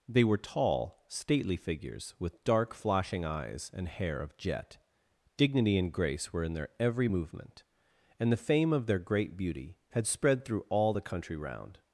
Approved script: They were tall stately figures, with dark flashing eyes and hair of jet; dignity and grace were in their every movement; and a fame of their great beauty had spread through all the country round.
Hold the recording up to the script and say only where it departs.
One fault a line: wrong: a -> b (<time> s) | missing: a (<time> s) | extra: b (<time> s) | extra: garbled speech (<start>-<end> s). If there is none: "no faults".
wrong: a -> the (8.3 s)